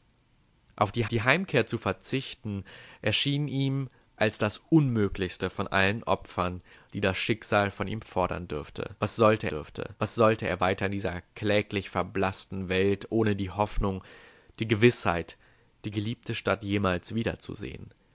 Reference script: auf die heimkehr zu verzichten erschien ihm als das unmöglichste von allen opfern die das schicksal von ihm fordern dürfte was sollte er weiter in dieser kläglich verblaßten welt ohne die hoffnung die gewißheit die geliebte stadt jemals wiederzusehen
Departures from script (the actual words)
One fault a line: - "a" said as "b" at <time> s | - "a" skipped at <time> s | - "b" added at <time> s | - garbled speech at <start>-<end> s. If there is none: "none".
- "die" added at 1.1 s
- "dürfte was sollte" added at 9.5 s